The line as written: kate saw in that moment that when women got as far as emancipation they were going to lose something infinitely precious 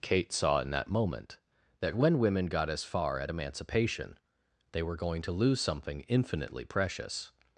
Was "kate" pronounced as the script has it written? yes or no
yes